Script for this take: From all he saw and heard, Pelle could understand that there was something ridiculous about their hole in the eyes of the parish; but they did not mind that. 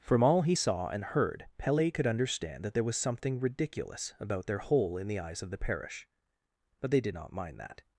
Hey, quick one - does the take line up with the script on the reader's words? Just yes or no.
yes